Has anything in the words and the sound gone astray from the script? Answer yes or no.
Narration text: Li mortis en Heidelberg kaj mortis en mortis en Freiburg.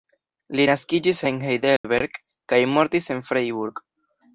yes